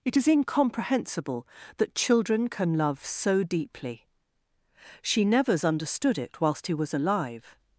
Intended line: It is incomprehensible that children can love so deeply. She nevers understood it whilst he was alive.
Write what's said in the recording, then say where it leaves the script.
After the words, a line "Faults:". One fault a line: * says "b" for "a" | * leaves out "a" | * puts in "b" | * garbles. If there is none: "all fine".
It is incomprehensible that children can love so deeply. She nevers understood it whilst he was alive.
Faults:
all fine